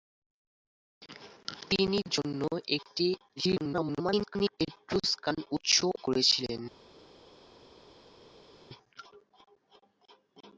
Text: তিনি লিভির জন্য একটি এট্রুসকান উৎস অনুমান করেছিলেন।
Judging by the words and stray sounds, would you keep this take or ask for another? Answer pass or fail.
fail